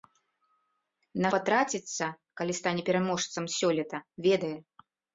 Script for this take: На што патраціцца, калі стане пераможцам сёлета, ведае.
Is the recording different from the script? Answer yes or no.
yes